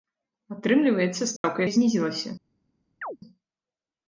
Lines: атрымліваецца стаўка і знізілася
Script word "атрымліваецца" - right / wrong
right